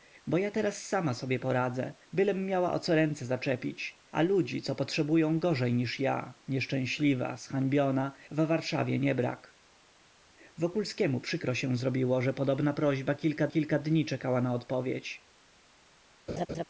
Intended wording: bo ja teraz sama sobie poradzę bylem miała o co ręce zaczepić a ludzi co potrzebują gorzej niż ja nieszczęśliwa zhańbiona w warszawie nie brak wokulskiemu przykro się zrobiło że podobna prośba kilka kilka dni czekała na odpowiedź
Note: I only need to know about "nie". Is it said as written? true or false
true